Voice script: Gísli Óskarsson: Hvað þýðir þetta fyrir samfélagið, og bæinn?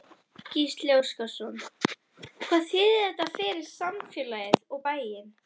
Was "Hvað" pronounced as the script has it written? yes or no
yes